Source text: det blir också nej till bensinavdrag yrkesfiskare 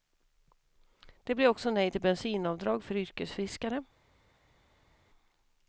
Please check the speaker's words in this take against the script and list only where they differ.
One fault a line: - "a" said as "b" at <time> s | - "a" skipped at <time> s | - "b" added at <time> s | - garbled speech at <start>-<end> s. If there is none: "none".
- "för" added at 2.8 s